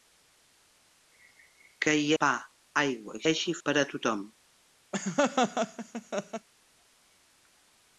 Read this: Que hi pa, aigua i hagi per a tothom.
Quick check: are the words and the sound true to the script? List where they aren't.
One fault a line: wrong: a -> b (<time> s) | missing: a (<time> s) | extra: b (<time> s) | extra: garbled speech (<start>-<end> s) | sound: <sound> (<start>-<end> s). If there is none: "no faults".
sound: laugh (4.9-6.5 s)